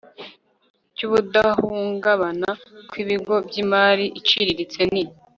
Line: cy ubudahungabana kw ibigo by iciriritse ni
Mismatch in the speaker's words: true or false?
true